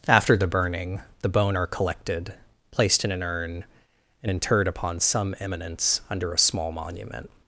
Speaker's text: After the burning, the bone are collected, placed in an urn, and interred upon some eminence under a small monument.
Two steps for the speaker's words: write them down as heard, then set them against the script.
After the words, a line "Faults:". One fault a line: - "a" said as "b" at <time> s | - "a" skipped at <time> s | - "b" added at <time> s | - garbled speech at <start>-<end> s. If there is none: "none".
After the burning, the bone are collected, placed in an urn, and interred upon some eminence under a small monument.
Faults:
none